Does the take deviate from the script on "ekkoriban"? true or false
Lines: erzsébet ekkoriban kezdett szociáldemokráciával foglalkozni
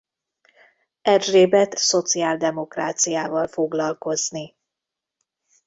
true